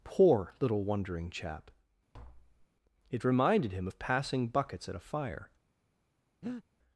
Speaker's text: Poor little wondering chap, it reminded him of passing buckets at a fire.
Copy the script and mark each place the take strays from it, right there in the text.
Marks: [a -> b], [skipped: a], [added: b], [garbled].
Poor little wondering chap, it reminded him of passing buckets at a fire.